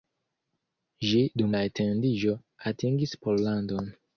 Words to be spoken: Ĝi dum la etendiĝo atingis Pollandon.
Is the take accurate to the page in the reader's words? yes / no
yes